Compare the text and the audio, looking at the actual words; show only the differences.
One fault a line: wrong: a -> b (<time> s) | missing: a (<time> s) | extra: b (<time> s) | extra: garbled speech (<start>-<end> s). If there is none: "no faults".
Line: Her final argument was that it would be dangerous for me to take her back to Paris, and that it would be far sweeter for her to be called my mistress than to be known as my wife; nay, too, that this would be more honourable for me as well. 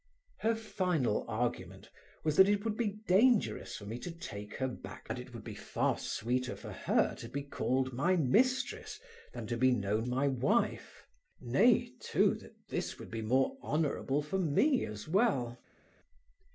missing: to Paris and (5.1 s)
missing: as (10.1 s)